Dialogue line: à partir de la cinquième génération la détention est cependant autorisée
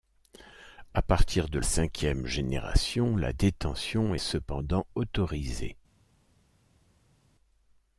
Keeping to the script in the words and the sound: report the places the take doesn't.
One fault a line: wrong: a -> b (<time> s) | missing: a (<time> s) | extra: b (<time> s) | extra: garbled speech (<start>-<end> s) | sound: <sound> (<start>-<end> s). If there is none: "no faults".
missing: la (1.6 s)
missing: est (4.2 s)